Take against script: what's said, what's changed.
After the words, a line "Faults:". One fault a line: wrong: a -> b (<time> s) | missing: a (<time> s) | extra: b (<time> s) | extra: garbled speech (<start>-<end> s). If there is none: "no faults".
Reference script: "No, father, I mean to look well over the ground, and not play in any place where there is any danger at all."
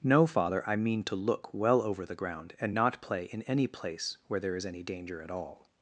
"No, father, I mean to look well over the ground, and not play in any place where there is any danger at all."
Faults:
no faults